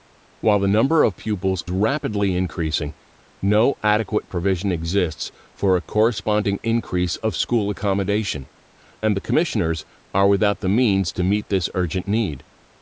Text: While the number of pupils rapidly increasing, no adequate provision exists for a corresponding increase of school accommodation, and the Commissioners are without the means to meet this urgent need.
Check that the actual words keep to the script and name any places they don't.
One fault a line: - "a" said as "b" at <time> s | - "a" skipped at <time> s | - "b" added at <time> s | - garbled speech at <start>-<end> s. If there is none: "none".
none